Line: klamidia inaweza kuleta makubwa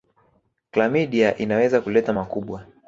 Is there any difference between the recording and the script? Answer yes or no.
no